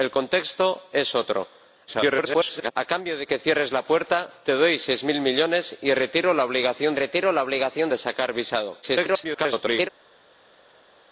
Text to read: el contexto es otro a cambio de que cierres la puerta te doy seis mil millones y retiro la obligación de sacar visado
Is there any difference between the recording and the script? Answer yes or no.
yes